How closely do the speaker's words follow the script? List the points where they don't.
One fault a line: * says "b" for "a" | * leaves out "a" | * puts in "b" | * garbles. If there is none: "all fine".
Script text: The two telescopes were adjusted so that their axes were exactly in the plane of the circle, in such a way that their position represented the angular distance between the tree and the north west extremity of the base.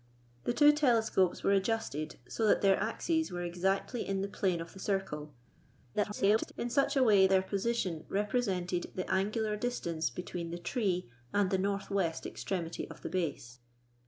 * garbles
* leaves out "that"